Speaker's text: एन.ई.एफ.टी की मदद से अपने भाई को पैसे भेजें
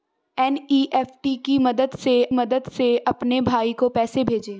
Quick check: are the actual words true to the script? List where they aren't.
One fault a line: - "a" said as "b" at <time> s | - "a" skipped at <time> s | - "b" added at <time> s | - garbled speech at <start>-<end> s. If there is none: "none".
- "मदद से" added at 2.3 s